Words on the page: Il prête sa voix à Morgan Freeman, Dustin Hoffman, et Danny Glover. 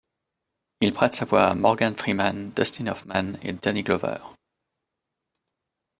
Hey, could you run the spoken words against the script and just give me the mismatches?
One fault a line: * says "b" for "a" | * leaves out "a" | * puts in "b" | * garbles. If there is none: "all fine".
all fine